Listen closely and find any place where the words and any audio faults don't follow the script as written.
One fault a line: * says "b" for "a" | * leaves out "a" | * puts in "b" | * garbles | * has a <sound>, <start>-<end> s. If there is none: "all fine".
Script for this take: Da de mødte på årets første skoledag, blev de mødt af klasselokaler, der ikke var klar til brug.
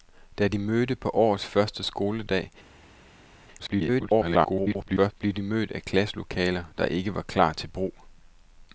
* garbles